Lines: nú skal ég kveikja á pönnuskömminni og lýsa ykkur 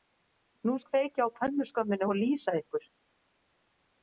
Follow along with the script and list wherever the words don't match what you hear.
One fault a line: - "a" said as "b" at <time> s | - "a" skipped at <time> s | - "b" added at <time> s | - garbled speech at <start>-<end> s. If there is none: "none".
- "skal" skipped at 0.8 s